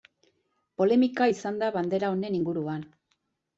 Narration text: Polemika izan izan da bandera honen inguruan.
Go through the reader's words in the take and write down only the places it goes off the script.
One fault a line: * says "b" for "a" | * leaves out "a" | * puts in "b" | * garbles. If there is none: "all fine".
* leaves out "izan"